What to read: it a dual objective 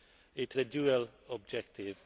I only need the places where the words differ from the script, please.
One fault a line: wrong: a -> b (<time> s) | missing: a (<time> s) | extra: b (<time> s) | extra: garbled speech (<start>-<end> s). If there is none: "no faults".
no faults